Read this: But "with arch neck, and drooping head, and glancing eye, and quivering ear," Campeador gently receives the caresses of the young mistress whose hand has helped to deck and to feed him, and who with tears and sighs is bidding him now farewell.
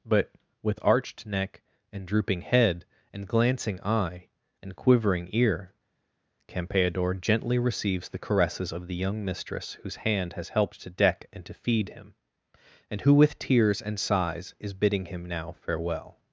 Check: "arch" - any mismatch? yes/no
yes